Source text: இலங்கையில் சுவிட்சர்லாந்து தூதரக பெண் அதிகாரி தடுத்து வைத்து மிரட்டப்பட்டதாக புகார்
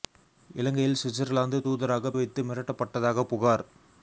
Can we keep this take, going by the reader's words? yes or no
no